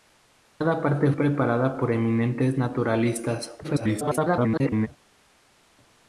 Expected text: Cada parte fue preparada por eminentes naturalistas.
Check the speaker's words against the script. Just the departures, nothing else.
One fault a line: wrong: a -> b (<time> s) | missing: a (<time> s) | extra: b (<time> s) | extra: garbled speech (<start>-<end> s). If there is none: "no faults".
missing: fue (1.1 s)
extra: garbled speech (3.6-4.9 s)